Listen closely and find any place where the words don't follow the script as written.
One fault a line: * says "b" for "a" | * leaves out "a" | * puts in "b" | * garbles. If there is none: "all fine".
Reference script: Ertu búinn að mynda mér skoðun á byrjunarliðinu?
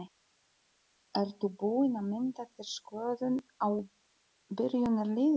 * says "þér" for "mér"